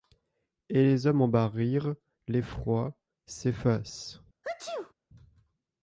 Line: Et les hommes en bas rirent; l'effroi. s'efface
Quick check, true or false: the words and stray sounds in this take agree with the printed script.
false